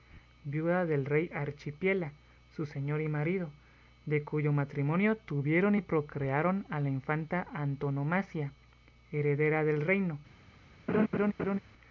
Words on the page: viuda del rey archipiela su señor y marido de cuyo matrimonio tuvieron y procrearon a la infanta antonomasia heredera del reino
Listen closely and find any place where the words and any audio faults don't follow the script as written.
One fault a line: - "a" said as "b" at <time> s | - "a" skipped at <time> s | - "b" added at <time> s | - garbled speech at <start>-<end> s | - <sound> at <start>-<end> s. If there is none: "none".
- laugh at 10.9-11.6 s